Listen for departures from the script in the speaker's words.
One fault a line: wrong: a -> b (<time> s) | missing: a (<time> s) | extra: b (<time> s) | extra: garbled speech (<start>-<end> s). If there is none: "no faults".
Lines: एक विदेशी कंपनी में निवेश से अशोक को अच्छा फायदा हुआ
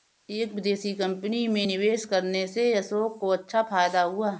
extra: करने (2.0 s)